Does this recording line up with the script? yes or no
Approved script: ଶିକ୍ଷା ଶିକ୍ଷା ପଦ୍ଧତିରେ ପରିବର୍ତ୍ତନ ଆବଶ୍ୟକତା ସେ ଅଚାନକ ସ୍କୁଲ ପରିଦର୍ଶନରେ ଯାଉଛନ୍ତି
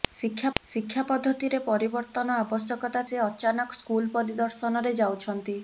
yes